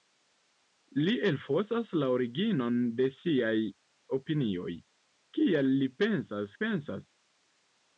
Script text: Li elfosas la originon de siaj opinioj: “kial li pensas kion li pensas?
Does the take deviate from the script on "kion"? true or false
true